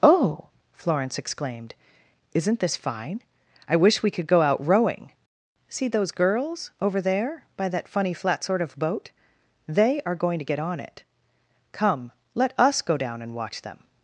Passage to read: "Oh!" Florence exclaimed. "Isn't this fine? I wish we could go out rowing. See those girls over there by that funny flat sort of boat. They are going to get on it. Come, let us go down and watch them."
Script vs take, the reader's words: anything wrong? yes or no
no